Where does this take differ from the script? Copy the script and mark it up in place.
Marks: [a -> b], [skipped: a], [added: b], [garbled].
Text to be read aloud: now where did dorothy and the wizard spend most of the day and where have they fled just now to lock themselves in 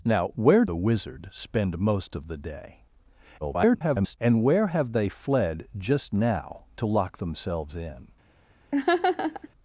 now where [skipped: did dorothy and] the wizard spend most of the day [garbled] and where have they fled just now to lock themselves in